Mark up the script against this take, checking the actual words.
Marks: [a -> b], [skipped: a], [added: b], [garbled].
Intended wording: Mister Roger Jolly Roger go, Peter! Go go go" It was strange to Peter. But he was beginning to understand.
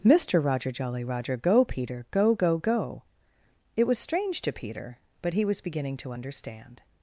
Mister Roger Jolly Roger go, Peter! Go go go" It was strange to Peter. But he was beginning to understand.